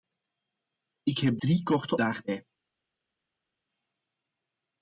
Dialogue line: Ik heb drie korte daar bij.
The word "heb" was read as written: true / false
true